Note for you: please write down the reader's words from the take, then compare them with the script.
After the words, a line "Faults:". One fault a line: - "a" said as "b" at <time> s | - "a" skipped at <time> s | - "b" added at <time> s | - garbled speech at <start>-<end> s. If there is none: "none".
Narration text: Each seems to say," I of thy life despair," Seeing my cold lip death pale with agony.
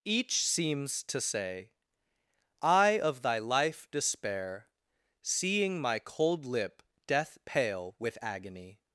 Each seems to say," I of thy life despair," Seeing my cold lip death pale with agony.
Faults:
none